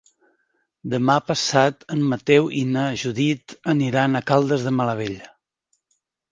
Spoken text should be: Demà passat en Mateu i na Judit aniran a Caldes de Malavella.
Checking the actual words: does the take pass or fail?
pass